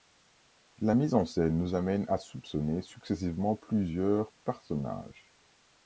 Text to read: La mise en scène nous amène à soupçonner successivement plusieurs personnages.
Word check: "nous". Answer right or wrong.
right